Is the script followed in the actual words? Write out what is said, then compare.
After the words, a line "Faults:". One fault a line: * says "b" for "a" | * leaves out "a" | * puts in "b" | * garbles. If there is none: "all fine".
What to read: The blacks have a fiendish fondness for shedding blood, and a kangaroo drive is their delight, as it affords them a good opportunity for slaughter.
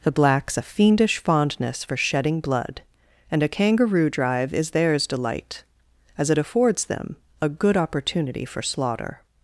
The blacks a fiendish fondness for shedding blood, and a kangaroo drive is theirs delight, as it affords them a good opportunity for slaughter.
Faults:
* leaves out "have"
* says "theirs" for "their"